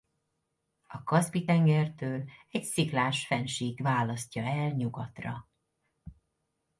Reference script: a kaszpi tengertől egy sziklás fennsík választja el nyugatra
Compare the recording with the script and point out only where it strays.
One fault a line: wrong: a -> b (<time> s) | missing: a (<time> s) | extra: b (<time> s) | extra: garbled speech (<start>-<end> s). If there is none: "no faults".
no faults